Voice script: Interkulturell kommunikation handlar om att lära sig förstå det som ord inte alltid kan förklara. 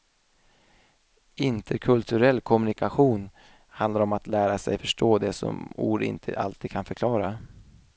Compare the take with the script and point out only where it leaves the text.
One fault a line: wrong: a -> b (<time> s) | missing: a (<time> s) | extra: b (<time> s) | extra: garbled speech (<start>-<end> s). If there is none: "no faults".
no faults